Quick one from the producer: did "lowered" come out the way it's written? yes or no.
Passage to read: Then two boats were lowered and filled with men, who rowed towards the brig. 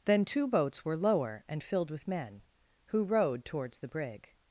no